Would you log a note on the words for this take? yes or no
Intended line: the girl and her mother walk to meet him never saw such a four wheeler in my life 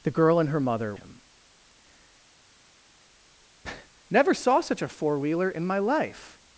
yes